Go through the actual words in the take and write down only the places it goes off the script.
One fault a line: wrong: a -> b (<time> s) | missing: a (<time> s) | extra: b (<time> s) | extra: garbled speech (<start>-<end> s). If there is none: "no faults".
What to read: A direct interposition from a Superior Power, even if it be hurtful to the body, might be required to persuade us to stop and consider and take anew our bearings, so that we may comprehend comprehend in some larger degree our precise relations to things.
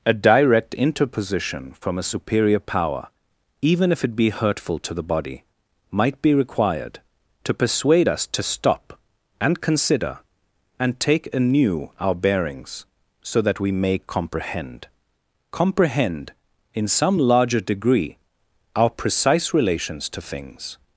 no faults